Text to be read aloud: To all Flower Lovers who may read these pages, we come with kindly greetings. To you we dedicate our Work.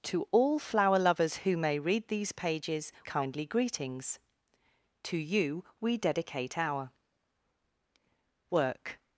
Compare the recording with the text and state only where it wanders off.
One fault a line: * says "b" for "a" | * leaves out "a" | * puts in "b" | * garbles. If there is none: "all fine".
* leaves out "we come with"